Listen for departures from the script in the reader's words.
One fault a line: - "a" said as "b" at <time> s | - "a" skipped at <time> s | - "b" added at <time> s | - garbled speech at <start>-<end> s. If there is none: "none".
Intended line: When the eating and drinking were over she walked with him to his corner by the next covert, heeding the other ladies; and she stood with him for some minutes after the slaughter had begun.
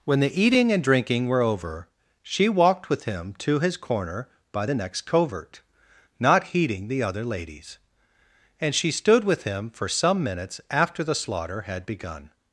- "not" added at 6.2 s